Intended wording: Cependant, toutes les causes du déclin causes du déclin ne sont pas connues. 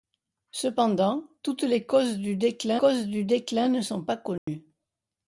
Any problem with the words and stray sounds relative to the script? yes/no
yes